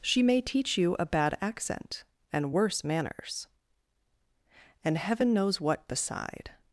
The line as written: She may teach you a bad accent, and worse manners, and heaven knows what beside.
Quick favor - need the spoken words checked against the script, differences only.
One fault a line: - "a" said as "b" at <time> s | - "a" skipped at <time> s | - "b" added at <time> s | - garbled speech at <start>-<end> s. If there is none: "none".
none